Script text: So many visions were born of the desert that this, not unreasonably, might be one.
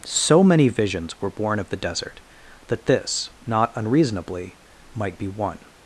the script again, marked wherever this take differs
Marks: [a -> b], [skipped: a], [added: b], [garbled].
So many visions were born of the desert that this, not unreasonably, might be one.